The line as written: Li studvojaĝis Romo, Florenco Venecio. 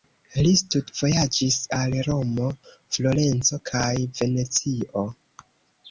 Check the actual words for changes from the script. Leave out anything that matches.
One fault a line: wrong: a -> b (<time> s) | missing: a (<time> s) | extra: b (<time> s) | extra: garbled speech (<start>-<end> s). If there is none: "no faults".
extra: al (1.8 s)
extra: kaj (3.7 s)